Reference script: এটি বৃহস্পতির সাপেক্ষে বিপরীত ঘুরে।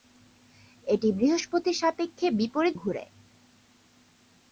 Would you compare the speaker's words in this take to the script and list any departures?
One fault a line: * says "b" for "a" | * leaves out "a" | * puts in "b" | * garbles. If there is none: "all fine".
all fine